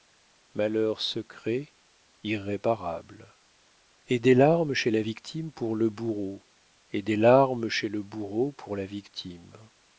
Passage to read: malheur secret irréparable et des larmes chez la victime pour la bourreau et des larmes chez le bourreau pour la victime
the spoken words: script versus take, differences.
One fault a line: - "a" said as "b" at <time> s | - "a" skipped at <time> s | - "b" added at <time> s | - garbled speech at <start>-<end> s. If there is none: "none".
- "la" said as "le" at 5.8 s